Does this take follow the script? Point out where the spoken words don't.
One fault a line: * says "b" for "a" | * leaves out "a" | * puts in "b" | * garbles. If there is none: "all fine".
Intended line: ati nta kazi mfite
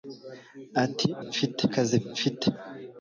* says "mfite" for "nta"